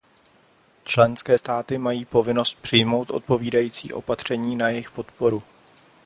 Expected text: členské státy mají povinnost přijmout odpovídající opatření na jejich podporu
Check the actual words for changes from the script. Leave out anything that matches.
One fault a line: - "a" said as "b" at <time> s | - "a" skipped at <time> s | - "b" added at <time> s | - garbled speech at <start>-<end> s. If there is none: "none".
none